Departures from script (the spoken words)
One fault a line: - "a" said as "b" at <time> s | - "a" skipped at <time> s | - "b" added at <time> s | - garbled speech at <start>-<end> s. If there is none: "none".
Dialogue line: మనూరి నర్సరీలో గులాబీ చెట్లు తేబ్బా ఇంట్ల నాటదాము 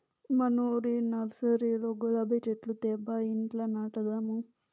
none